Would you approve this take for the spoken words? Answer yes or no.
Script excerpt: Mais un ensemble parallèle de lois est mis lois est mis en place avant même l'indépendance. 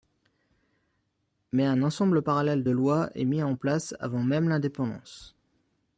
no